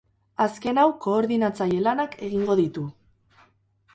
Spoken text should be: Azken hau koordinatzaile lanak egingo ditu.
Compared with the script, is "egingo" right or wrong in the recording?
right